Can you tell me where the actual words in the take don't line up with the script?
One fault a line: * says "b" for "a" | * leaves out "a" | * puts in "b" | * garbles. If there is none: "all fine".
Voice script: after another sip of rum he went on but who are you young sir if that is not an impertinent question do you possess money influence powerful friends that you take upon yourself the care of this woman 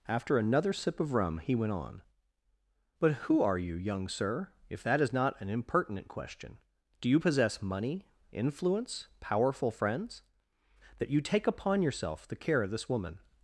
all fine